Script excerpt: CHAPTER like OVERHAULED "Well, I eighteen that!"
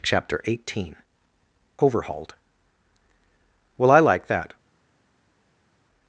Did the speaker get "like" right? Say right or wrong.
wrong